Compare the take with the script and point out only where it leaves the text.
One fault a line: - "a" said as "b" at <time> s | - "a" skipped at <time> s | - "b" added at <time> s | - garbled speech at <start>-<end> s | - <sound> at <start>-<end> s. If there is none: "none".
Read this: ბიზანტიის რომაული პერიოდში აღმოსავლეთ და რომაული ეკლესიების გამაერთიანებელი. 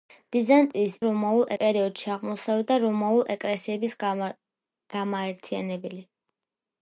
none